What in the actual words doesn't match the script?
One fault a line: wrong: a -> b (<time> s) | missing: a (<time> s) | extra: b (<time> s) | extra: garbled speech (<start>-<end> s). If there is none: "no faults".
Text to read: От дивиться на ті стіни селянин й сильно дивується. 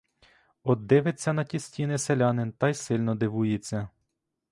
extra: та (2.5 s)